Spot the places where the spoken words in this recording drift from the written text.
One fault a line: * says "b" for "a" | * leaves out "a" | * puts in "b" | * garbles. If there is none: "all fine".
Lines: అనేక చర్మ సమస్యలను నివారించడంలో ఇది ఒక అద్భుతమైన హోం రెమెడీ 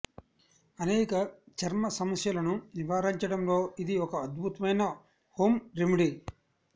all fine